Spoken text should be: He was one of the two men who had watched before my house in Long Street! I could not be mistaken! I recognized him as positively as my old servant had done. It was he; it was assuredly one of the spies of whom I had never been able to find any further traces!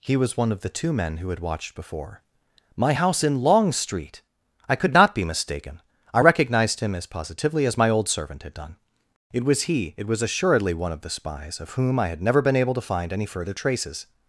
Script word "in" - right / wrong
right